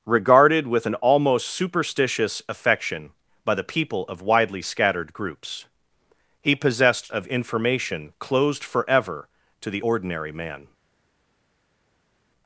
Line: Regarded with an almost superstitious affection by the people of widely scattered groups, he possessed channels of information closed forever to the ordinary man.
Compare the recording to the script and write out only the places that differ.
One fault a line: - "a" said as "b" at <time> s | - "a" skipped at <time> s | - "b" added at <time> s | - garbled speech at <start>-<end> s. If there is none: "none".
- "channels" skipped at 7.1 s